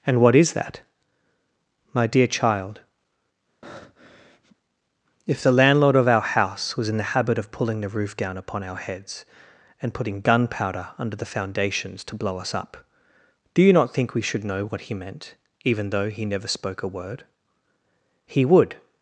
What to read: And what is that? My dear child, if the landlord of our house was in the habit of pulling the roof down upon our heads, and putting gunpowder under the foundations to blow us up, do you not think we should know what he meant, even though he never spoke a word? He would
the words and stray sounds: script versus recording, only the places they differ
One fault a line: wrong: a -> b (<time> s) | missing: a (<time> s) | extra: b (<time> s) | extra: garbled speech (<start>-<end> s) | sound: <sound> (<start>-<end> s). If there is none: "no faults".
sound: breath (3.6-4.6 s)